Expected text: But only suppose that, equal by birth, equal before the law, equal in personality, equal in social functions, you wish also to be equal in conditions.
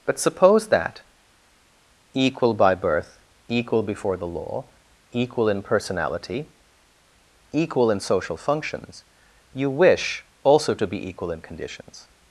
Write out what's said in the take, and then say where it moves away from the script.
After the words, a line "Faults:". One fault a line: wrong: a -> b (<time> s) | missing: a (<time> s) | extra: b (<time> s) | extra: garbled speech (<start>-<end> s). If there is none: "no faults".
But suppose that, equal by birth, equal before the law, equal in personality, equal in social functions, you wish also to be equal in conditions.
Faults:
missing: only (0.2 s)